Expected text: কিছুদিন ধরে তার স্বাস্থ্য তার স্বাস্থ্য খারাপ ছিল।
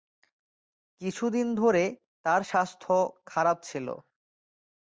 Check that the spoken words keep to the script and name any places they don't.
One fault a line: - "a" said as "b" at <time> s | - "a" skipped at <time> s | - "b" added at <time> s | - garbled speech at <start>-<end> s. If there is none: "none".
- "তার স্বাস্থ্য" skipped at 2.9 s